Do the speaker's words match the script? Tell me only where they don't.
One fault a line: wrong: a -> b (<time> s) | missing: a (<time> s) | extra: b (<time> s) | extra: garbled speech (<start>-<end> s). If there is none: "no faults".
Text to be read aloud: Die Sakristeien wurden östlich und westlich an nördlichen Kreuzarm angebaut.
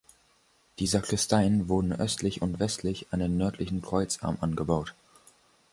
extra: den (3.2 s)